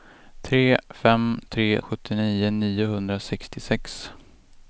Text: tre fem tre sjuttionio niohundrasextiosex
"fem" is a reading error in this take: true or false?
false